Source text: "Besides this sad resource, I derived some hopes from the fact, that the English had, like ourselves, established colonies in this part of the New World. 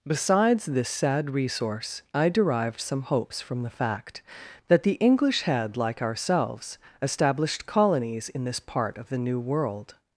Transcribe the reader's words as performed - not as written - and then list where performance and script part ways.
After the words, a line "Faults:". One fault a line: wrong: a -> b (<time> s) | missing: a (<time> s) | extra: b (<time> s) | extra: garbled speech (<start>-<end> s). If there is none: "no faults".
"Besides this sad resource, I derived some hopes from the fact, that the English had, like ourselves, established colonies in this part of the New World.
Faults:
no faults